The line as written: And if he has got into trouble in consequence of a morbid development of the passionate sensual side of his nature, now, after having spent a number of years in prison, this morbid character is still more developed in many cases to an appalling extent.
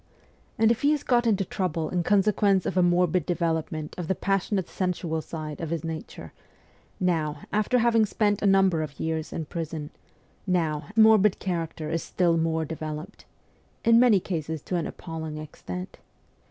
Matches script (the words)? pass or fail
fail